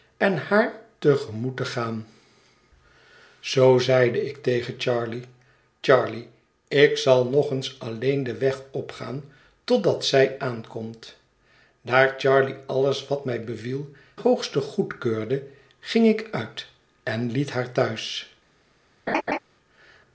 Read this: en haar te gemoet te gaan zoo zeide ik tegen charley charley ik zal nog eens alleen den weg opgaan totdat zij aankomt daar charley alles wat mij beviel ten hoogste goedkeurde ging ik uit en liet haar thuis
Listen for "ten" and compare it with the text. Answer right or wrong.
wrong